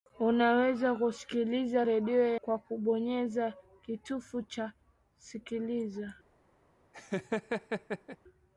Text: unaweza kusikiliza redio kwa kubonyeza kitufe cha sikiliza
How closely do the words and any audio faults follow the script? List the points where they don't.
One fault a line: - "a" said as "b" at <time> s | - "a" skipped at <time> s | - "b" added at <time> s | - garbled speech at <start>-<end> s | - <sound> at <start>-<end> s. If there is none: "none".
- laugh at 6.9-8.2 s